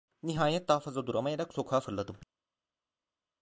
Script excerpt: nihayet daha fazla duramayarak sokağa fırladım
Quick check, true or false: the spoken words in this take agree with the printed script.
true